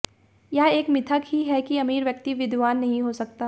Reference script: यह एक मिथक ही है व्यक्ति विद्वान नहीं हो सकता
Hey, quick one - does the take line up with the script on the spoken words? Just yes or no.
no